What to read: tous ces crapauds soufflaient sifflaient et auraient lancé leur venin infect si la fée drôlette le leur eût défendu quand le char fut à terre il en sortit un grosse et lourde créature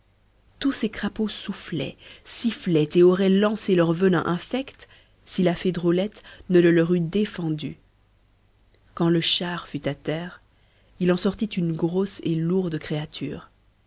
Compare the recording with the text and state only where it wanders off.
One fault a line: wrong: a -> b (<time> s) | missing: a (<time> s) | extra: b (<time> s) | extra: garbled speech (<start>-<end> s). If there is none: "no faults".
extra: ne (6.5 s)
wrong: un -> une (11.5 s)